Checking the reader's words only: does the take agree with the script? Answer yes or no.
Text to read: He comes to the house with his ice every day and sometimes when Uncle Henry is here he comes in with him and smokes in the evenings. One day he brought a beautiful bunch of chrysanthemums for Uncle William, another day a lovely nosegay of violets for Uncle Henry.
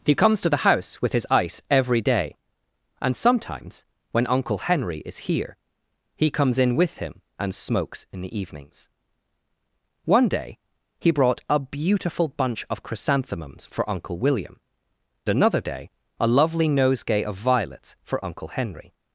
yes